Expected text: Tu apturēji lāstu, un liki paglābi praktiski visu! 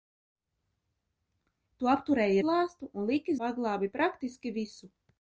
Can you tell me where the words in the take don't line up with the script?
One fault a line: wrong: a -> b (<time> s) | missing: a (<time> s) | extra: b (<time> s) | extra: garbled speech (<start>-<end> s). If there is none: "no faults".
no faults